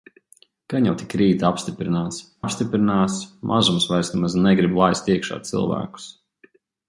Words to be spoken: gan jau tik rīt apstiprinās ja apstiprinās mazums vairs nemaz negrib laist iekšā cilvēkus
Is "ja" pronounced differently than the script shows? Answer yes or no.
yes